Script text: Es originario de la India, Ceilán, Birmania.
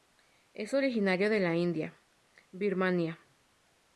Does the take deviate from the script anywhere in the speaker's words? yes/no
yes